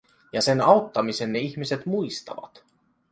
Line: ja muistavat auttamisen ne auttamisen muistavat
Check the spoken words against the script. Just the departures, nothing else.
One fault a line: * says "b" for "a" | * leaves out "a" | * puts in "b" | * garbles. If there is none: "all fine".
* says "sen" for "muistavat"
* says "ihmiset" for "auttamisen"